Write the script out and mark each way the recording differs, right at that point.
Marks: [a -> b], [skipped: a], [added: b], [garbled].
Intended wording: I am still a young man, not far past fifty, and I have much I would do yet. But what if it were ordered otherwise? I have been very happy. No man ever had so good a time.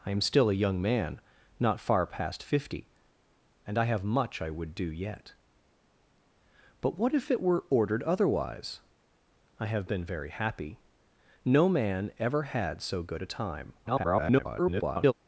I am still a young man, not far past fifty, and I have much I would do yet. But what if it were ordered otherwise? I have been very happy. No man ever had so good a time. [garbled]